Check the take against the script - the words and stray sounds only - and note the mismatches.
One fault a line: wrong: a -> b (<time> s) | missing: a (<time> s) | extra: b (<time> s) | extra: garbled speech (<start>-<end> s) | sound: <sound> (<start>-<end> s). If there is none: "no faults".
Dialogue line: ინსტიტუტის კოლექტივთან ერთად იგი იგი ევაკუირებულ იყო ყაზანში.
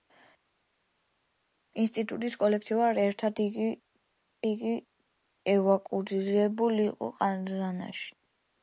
no faults